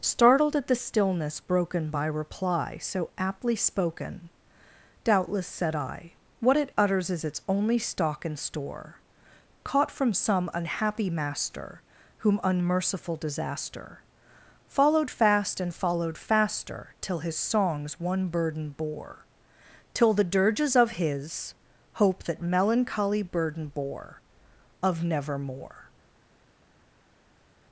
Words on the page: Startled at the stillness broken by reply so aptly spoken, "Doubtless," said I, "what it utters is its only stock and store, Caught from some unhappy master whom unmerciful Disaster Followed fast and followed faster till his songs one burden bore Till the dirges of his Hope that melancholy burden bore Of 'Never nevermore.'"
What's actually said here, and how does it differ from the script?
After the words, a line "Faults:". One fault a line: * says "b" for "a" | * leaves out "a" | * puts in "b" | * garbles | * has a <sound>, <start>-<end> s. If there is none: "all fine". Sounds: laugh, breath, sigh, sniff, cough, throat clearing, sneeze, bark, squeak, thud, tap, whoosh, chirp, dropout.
Startled at the stillness broken by reply so aptly spoken, "Doubtless," said I, "what it utters is its only stock and store, Caught from some unhappy master whom unmerciful Disaster Followed fast and followed faster till his songs one burden bore Till the dirges of his Hope that melancholy burden bore Of nevermore.'"
Faults:
* leaves out "Never"